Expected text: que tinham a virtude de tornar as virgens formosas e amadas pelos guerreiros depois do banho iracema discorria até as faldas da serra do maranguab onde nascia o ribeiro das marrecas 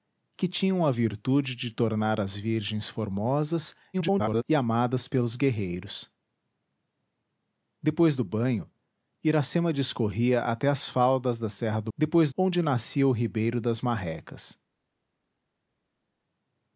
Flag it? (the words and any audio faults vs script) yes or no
yes